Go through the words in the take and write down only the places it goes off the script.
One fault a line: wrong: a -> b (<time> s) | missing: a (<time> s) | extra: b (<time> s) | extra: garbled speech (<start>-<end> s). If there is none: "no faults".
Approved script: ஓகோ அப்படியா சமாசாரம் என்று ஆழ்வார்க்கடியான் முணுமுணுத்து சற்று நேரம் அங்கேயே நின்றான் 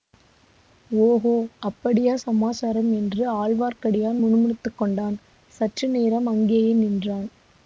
extra: கொண்டான் (4.7 s)